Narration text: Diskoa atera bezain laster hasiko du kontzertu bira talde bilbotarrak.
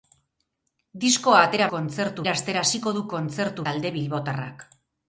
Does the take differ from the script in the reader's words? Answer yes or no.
yes